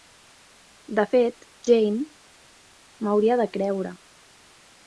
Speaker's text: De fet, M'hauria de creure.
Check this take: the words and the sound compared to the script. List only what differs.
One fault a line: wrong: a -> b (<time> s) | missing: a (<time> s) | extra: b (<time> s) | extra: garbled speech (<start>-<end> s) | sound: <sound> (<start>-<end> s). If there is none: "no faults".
extra: Jane (1.7 s)